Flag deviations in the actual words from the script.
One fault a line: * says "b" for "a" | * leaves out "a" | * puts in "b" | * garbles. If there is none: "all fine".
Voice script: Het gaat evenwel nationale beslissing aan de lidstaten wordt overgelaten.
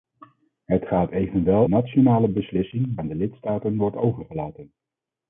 all fine